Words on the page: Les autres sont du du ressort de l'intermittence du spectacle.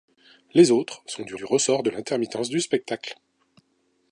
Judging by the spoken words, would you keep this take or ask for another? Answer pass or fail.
pass